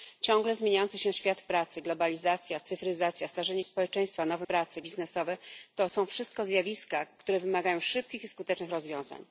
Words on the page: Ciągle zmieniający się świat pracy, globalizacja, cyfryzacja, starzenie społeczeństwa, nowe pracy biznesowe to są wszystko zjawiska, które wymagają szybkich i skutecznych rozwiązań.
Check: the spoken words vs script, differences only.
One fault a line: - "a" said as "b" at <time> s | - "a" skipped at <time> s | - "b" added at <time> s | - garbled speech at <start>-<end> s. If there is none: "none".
none